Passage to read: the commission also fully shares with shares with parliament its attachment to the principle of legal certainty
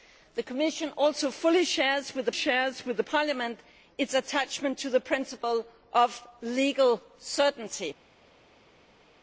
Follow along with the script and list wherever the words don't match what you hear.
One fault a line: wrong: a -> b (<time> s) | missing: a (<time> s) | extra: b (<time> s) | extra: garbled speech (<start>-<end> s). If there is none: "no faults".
no faults